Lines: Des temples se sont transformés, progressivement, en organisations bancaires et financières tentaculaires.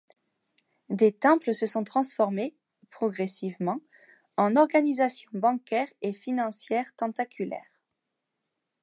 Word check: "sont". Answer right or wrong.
right